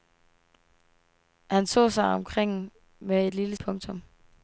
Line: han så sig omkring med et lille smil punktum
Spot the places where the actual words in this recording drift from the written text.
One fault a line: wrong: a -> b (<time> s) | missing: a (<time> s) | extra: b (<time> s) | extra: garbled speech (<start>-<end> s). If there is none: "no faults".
missing: smil (3.6 s)